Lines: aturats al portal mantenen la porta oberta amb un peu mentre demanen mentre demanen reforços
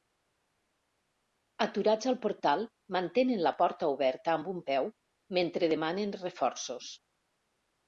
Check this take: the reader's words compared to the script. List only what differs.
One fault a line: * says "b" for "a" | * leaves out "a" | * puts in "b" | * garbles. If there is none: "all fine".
* leaves out "mentre demanen"